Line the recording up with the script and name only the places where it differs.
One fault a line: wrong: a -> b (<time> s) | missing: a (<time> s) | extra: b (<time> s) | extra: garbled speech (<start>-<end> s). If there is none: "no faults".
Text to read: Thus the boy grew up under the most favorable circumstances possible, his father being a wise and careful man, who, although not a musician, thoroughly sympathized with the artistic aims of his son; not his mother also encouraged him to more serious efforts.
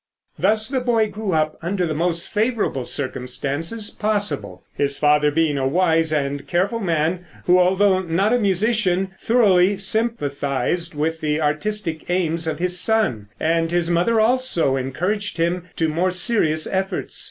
wrong: not -> and (13.4 s)